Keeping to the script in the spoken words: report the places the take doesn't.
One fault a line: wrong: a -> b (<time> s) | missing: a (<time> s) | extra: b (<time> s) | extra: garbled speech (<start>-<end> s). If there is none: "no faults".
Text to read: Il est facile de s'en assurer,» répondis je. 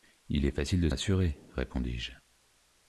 missing: s'en (0.9 s)